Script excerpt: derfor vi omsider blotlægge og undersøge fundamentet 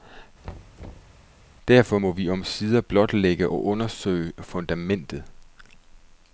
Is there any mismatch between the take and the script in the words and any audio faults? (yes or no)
yes